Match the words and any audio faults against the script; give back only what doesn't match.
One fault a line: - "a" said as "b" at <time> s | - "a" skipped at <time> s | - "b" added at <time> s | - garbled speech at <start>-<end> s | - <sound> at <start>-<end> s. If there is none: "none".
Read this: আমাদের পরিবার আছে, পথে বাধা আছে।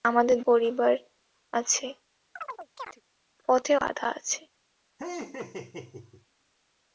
- chirp at 2.4-3.0 s
- laugh at 5.0-6.3 s